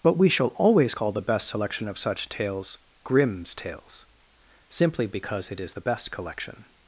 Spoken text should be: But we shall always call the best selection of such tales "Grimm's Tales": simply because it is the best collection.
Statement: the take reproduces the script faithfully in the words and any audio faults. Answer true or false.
true